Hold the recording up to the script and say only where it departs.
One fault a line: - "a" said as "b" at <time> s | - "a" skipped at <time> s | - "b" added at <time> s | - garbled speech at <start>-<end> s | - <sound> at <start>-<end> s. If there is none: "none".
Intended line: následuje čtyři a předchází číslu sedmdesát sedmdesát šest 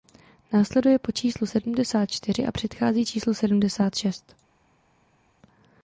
- "po číslu sedmdesát" added at 1.0 s
- "sedmdesát" skipped at 4.0 s